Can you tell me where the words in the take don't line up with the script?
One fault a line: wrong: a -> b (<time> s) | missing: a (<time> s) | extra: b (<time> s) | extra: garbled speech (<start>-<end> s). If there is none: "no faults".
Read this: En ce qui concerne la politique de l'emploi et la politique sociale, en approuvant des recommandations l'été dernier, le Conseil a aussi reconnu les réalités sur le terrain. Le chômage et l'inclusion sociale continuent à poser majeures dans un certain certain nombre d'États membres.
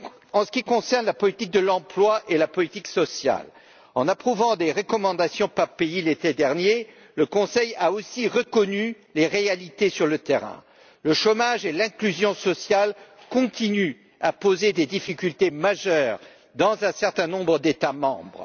extra: par pays (5.5 s)
extra: des difficultés (14.7 s)
missing: certain (17.3 s)